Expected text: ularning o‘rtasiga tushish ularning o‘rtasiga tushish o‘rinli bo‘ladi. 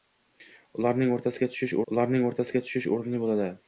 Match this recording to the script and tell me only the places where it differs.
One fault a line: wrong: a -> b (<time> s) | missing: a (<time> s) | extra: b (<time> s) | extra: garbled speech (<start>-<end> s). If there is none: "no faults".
no faults